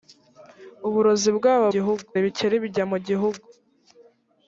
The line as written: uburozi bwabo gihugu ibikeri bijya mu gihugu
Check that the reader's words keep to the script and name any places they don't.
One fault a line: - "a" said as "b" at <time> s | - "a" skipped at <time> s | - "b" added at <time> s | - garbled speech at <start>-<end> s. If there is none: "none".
none